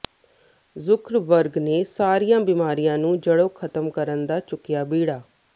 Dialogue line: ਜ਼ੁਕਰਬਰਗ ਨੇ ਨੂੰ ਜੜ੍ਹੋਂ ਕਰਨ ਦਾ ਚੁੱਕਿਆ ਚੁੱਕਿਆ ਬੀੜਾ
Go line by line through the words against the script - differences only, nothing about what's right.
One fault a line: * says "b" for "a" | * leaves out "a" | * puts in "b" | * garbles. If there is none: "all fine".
* puts in "ਸਾਰੀਆਂ ਬਿਮਾਰੀਆਂ"
* puts in "ਖ਼ਤਮ"
* leaves out "ਚੁੱਕਿਆ"